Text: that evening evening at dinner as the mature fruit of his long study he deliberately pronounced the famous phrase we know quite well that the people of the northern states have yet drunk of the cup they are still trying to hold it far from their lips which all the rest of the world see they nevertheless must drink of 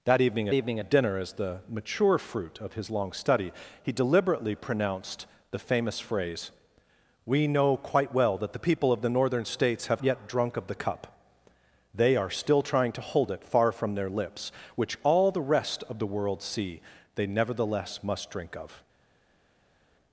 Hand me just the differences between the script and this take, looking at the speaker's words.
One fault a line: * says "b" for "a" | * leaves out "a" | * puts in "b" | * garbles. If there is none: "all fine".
all fine